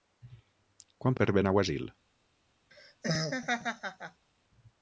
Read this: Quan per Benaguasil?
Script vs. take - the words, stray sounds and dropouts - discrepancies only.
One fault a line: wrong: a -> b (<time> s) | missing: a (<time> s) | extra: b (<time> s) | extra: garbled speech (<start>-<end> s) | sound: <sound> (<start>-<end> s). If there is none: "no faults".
sound: laugh (2.7-4.3 s)